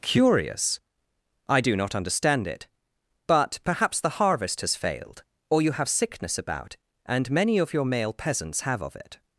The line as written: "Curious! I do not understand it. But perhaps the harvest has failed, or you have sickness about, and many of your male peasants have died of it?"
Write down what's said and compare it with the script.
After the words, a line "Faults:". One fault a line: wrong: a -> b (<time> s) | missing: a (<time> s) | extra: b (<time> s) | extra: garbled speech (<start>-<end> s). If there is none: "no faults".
"Curious! I do not understand it. But perhaps the harvest has failed, or you have sickness about, and many of your male peasants have of it?"
Faults:
missing: died (8.8 s)